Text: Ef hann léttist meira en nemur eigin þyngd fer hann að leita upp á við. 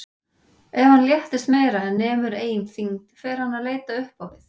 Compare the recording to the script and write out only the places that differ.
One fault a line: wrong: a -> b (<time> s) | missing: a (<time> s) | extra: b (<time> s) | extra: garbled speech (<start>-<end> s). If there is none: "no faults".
no faults